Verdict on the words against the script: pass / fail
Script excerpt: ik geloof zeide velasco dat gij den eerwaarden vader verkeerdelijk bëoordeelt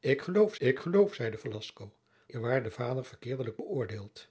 fail